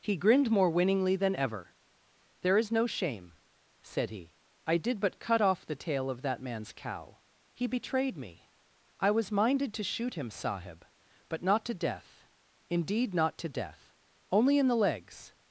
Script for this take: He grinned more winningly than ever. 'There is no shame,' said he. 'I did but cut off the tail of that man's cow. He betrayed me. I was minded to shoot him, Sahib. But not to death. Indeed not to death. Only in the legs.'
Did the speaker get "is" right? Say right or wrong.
right